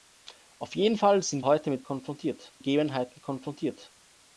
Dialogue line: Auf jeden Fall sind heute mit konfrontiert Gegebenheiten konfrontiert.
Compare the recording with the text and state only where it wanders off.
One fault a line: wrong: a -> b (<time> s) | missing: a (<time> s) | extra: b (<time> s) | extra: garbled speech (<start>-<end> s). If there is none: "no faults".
no faults